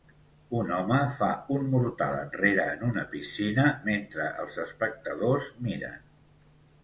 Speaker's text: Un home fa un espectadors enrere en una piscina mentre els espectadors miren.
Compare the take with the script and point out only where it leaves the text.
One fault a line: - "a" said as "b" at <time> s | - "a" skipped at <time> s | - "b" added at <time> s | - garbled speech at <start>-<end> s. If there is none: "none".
- "espectadors" said as "mortal" at 1.7 s